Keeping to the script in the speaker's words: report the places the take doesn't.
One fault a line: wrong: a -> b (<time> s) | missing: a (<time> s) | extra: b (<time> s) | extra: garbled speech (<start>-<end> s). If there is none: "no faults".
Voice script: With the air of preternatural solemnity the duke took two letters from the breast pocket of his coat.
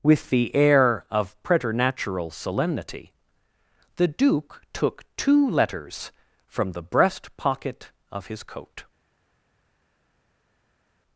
no faults